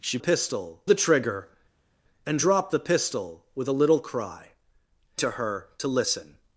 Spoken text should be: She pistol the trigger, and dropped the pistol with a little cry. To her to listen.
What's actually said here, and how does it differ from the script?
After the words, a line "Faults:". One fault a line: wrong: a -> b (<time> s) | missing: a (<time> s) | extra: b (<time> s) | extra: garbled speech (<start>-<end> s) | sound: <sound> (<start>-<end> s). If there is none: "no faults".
She pistol the trigger, and dropped the pistol with a little cry. To her to listen.
Faults:
no faults